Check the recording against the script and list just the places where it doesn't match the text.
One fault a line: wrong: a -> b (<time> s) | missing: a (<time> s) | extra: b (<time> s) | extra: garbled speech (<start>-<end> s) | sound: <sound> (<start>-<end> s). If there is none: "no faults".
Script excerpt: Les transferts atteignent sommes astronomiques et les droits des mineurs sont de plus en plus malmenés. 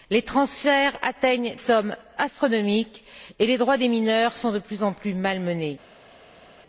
no faults